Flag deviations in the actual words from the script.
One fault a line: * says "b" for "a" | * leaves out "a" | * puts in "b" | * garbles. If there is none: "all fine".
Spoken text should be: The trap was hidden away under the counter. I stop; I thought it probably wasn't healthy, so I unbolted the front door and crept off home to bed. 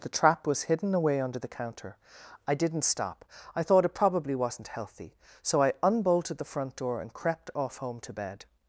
* puts in "didn't"